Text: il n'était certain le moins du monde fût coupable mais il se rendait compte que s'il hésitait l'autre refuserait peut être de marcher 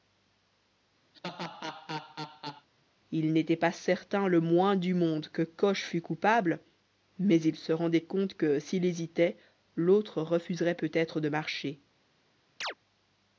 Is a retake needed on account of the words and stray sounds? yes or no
yes